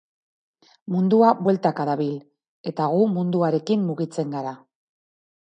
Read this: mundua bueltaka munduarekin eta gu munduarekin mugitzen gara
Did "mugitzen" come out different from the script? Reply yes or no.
no